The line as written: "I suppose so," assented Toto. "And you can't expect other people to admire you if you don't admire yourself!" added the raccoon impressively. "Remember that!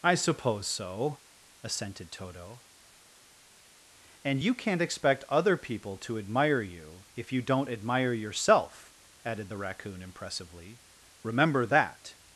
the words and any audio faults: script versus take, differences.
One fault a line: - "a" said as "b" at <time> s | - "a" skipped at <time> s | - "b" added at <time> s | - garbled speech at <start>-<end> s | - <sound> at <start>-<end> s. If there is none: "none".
none